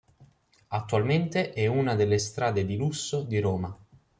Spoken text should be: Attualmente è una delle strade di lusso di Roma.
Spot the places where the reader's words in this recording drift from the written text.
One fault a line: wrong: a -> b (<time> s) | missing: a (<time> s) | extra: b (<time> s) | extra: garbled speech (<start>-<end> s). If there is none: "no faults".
no faults